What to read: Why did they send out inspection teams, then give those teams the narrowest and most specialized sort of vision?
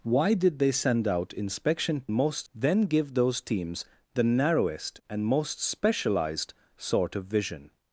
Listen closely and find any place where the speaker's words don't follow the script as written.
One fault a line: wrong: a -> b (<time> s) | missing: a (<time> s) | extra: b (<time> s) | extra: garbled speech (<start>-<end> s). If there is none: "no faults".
wrong: teams -> most (2.1 s)